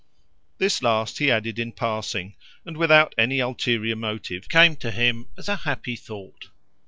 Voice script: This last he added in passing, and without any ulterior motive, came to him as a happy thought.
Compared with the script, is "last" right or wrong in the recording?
right